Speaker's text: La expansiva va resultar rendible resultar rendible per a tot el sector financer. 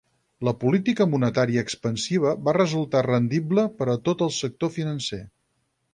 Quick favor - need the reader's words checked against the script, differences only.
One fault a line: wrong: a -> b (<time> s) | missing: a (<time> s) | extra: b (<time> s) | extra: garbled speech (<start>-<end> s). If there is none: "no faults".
extra: política monetària (0.6 s)
missing: resultar rendible (3.7 s)